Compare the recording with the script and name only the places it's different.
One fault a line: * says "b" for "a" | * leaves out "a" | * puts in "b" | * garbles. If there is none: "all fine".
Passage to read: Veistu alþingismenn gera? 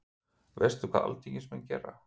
* puts in "hvað"